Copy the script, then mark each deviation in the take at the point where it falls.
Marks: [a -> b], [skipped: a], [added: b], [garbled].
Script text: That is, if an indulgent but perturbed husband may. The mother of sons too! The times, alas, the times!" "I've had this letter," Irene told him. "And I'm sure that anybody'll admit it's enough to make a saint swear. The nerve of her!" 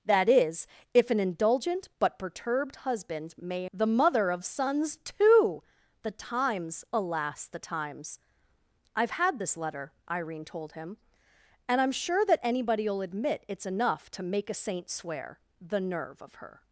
That is, if an indulgent but perturbed husband may. The mother of sons too! The times, alas, the times!" "I've had this letter," Irene told him. "And I'm sure that anybody'll admit it's enough to make a saint swear. The nerve of her!"